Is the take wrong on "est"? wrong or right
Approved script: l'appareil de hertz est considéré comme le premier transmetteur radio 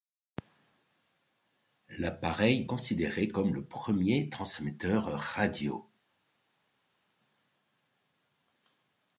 wrong